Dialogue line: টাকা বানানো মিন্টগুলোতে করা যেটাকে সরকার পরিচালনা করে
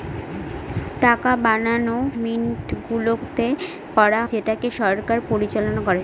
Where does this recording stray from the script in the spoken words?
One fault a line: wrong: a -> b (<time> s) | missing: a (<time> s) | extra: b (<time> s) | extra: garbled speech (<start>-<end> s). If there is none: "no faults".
no faults